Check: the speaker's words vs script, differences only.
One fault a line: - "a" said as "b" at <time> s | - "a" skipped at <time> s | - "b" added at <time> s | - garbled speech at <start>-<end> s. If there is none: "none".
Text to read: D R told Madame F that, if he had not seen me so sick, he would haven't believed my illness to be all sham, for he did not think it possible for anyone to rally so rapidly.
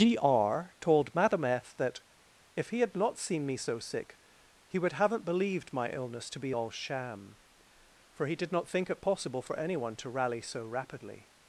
none